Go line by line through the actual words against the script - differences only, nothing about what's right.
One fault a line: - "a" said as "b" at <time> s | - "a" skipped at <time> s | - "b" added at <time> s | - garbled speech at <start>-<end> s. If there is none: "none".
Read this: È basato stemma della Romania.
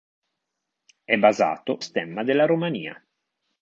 none